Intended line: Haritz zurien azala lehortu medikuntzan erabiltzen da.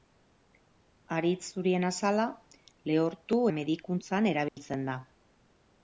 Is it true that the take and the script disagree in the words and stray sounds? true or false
true